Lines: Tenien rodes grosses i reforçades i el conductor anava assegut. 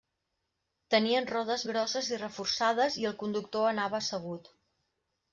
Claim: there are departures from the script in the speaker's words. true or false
false